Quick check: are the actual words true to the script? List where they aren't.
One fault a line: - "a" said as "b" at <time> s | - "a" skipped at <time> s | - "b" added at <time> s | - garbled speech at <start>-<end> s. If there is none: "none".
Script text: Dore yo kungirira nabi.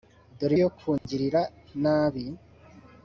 none